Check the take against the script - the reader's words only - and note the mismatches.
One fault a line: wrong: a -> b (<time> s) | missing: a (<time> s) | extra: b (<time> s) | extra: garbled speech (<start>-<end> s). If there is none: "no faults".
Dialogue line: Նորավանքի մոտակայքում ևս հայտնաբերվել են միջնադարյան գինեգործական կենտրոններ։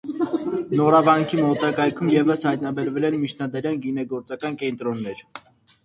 no faults